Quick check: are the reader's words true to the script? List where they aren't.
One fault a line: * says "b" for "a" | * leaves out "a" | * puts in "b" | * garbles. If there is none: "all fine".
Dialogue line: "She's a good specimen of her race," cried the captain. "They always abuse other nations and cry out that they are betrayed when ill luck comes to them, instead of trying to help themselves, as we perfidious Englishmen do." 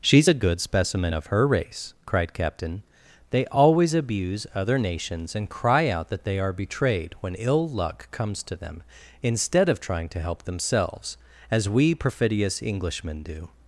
* leaves out "the"